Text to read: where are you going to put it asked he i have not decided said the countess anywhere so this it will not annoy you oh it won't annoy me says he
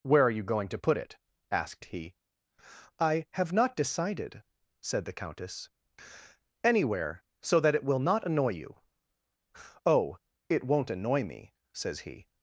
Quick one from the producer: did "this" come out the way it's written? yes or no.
no